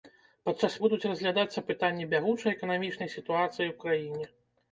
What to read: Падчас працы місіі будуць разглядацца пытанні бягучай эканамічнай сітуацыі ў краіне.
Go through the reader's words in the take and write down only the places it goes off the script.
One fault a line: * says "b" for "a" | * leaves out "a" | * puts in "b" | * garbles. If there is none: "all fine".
* leaves out "працы місіі"